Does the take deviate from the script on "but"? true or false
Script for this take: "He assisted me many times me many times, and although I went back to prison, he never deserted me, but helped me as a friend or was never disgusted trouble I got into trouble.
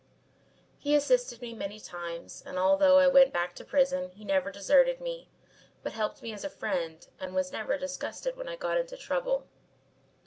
false